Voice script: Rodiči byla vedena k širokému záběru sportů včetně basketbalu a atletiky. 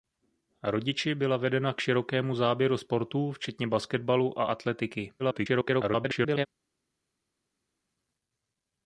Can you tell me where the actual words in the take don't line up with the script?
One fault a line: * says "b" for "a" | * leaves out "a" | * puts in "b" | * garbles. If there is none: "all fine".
* garbles